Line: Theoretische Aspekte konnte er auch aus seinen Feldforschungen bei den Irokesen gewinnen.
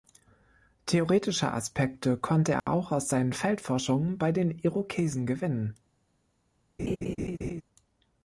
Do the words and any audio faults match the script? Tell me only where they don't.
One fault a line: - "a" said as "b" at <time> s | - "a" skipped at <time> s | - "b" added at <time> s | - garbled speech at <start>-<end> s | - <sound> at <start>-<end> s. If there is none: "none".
- dropout at 2.6-2.7 s
- laugh at 6.8-7.6 s